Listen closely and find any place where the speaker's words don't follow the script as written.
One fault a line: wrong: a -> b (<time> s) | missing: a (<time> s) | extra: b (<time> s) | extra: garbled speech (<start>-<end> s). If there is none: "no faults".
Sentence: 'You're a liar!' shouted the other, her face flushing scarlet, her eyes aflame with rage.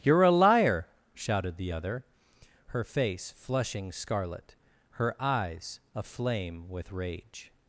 no faults